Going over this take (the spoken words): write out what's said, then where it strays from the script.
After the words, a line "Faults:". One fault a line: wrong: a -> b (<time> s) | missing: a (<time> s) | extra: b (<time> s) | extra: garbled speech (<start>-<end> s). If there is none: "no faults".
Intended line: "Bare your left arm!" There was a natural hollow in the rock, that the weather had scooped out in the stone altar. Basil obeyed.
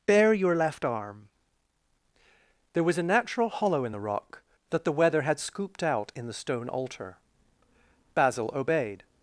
"Bare your left arm!" There was a natural hollow in the rock, that the weather had scooped out in the stone altar. Basil obeyed.
Faults:
no faults